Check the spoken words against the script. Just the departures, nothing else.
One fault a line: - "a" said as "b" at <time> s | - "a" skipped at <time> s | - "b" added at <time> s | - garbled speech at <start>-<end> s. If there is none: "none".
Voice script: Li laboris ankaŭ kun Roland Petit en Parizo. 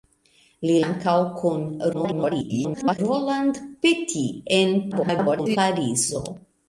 - "laboris" skipped at 0.8 s
- garbled speech at 1.9-3.0 s
- garbled speech at 4.9-5.6 s